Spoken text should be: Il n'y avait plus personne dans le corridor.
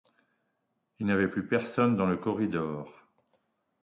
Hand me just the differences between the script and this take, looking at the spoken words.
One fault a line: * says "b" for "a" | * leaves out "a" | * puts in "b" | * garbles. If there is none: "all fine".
all fine